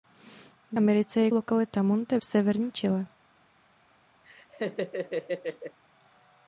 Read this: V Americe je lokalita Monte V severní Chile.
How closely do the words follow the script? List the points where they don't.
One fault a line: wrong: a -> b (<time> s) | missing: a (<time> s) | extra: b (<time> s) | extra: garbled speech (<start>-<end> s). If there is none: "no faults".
no faults